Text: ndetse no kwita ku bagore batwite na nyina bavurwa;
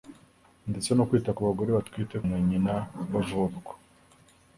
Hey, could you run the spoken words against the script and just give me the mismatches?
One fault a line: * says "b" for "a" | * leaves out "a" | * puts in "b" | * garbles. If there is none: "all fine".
all fine